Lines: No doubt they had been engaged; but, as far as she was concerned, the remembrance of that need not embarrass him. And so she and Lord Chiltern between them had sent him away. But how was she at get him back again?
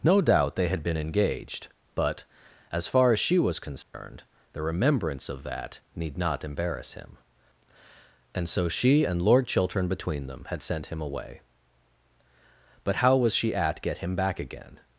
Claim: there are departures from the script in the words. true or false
false